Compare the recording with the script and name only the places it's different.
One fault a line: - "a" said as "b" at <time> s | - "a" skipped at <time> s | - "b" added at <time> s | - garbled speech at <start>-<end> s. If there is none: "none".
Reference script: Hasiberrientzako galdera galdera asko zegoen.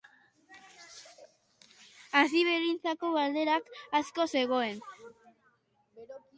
- "galdera" skipped at 3.6 s